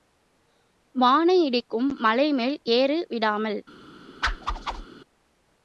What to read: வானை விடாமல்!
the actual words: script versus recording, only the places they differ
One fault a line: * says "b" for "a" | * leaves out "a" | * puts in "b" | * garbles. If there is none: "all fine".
* puts in "இடிக்கும் மலைமேல் ஏறு"